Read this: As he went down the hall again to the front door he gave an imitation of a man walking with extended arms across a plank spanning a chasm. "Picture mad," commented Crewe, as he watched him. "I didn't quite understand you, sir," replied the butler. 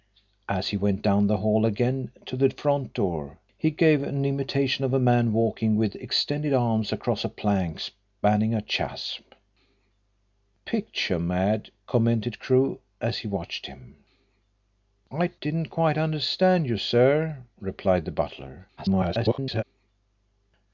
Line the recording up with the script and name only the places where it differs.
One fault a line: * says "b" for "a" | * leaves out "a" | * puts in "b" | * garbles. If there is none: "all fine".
* garbles